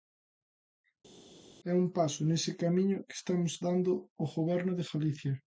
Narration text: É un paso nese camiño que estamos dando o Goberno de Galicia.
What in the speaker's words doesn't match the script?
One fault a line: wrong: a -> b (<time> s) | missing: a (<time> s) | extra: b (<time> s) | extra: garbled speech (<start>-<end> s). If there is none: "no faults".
no faults